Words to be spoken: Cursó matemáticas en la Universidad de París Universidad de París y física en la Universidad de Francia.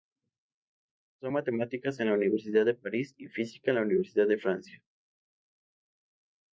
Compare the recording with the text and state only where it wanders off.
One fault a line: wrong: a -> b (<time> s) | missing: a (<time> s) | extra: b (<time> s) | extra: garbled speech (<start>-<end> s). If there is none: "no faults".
missing: Universidad de París (3.1 s)